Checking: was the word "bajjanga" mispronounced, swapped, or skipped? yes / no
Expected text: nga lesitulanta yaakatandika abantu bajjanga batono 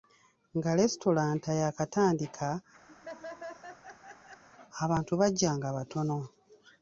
no